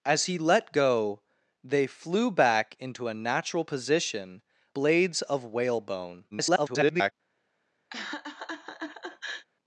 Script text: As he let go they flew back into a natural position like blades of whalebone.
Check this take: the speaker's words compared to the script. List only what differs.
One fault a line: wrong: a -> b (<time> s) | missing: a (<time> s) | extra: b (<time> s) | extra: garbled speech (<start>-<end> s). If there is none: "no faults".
missing: like (4.4 s)
extra: garbled speech (6.3-7.1 s)